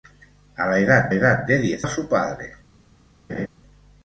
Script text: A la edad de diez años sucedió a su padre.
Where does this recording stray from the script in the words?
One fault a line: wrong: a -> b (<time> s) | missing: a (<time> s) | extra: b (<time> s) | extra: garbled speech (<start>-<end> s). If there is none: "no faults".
extra: edad (1.1 s)
missing: años sucedió (1.9 s)